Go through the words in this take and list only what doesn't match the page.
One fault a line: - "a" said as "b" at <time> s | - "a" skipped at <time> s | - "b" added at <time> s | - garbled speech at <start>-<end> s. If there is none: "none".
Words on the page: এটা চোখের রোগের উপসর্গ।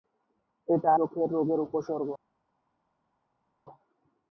none